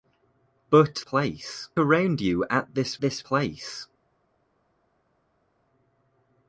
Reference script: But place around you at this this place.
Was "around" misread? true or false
false